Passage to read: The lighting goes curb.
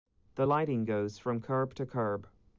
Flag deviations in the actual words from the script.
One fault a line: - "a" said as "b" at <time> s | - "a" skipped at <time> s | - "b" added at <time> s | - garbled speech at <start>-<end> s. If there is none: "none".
- "from curb to" added at 1.2 s